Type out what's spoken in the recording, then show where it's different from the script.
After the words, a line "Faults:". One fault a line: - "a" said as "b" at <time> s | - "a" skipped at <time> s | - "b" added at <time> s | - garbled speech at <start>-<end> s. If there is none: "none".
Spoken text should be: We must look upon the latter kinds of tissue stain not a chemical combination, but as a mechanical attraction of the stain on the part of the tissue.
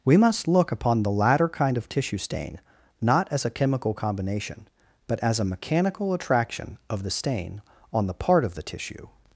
We must look upon the latter kind of tissue stain not as a chemical combination, but as a mechanical attraction of the stain on the part of the tissue.
Faults:
- "kinds" said as "kind" at 1.5 s
- "as" added at 3.3 s